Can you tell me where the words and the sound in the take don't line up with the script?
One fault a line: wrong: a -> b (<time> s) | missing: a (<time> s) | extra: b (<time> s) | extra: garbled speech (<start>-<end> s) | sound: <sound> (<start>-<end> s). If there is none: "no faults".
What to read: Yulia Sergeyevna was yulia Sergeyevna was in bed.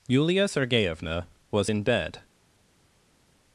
missing: yulia Sergeyevna was (1.7 s)